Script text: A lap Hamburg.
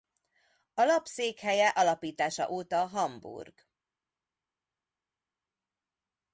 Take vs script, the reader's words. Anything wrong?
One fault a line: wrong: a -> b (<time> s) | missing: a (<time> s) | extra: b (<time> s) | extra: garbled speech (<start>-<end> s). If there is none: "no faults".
extra: székhelye alapítása óta (1.1 s)